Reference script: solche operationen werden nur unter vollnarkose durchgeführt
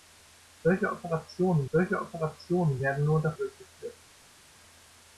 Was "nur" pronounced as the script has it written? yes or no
yes